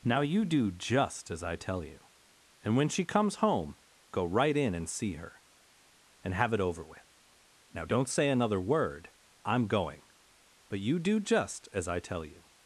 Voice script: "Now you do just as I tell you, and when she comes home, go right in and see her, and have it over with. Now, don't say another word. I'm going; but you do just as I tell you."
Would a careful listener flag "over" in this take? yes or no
no